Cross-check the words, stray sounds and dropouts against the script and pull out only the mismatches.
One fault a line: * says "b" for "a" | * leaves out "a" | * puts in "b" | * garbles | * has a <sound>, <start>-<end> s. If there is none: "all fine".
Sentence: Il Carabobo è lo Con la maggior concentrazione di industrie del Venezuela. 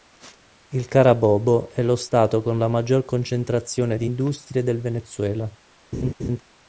* puts in "Stato"
* has a laugh, 5.9-6.4 s